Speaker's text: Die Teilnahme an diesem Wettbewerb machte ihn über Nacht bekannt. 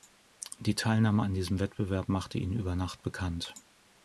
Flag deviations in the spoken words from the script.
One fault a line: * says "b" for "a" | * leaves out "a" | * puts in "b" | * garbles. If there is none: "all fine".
all fine